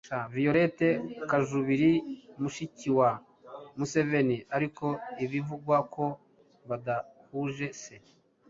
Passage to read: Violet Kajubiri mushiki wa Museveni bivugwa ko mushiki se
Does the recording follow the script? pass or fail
fail